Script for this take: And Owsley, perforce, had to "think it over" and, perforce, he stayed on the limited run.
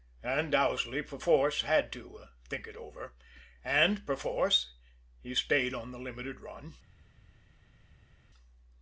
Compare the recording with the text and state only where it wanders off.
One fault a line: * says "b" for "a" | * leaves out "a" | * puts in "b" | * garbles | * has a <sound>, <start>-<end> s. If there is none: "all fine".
all fine